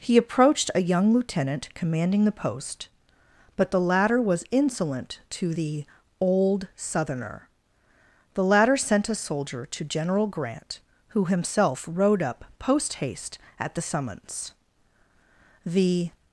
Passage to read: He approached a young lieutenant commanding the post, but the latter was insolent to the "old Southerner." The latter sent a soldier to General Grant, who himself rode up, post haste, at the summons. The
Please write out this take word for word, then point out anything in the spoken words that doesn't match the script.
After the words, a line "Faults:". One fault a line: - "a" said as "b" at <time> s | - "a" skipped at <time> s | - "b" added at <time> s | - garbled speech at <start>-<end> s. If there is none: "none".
He approached a young lieutenant commanding the post, but the latter was insolent to the "old Southerner." The latter sent a soldier to General Grant, who himself rode up, post haste, at the summons. The
Faults:
none